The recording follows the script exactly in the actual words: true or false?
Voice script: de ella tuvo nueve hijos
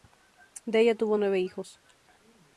true